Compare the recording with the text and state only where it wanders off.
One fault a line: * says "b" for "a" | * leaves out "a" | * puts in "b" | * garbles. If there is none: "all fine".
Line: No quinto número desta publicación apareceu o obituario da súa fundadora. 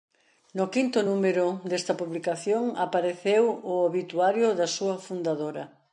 all fine